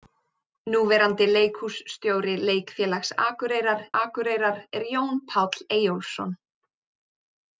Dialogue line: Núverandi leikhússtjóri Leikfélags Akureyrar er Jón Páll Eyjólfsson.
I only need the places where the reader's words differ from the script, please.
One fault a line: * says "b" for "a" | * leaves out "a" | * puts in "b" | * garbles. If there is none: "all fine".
* puts in "Akureyrar"